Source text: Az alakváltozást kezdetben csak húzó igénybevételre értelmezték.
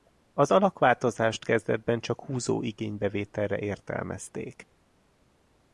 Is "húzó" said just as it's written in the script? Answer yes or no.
yes